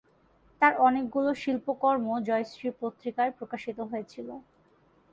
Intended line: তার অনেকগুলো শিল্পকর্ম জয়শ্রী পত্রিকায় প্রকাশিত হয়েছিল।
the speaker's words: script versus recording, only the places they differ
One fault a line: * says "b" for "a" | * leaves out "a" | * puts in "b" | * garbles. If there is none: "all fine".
all fine